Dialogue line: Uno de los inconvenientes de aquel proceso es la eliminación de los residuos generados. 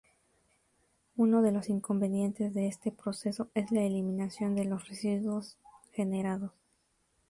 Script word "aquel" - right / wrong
wrong